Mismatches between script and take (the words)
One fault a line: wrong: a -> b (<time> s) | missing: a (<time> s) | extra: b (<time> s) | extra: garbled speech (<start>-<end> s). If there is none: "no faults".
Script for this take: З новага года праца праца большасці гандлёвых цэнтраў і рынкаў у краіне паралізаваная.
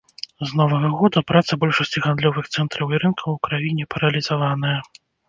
missing: праца (1.6 s)